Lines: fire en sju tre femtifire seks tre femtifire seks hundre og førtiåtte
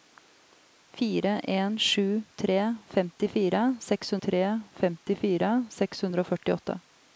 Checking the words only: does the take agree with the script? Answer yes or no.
yes